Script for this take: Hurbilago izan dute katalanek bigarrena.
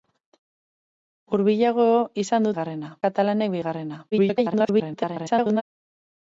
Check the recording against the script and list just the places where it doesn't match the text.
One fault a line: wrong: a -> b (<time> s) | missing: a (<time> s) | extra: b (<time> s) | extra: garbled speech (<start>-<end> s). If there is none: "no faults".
wrong: dute -> bigarrena (2.5 s)
extra: garbled speech (4.1-5.6 s)